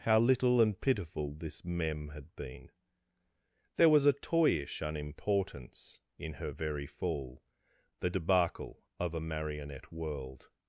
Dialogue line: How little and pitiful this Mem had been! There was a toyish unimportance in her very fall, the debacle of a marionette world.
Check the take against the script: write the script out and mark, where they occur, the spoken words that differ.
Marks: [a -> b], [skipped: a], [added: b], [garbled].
How little and pitiful this Mem had been! There was a toyish unimportance in her very fall, the debacle of a marionette world.